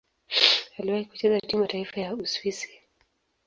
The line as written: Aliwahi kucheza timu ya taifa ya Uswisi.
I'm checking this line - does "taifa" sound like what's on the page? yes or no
yes